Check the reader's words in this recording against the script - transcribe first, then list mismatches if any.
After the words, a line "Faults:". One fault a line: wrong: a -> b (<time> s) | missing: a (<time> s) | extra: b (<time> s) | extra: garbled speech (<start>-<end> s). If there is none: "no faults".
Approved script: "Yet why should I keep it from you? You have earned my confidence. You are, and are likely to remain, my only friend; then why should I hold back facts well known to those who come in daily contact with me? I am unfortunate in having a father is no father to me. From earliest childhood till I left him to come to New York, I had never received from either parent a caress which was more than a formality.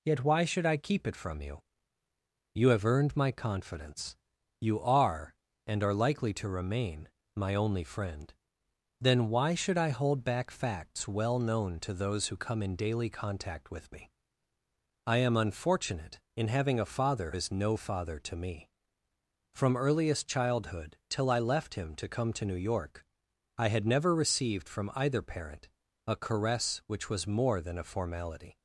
"Yet why should I keep it from you? You have earned my confidence. You are, and are likely to remain, my only friend; then why should I hold back facts well known to those who come in daily contact with me? I am unfortunate in having a father is no father to me. From earliest childhood till I left him to come to New York, I had never received from either parent a caress which was more than a formality.
Faults:
no faults